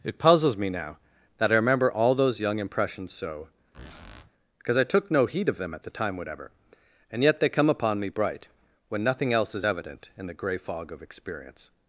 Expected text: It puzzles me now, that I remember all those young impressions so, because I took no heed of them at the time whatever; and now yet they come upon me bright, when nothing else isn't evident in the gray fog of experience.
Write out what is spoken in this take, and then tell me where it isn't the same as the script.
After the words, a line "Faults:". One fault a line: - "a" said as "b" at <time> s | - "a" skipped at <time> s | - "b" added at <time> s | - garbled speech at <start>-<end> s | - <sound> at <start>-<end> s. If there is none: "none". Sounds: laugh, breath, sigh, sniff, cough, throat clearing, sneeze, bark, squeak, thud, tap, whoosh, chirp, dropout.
It puzzles me now, that I remember all those young impressions so, because I took no heed of them at the time whatever; and yet they come upon me bright, when nothing else is evident in the gray fog of experience.
Faults:
- squeak at 3.7-4.3 s
- "now" skipped at 7.2 s
- "isn't" said as "is" at 9.6 s